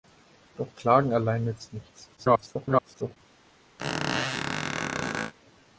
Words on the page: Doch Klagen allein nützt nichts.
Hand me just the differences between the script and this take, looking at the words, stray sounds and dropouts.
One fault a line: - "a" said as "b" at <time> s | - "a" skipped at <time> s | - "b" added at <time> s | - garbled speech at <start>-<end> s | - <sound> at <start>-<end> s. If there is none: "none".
- garbled speech at 2.2-3.2 s
- squeak at 3.8-5.3 s